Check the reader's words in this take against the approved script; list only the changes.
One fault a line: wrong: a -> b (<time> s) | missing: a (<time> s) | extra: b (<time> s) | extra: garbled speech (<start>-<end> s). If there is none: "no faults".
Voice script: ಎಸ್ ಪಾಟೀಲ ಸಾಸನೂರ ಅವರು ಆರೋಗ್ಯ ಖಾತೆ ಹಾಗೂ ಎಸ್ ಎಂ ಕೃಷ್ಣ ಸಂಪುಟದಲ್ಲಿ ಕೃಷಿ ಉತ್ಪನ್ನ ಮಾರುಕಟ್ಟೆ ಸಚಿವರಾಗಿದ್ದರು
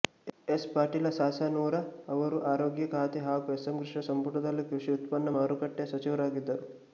no faults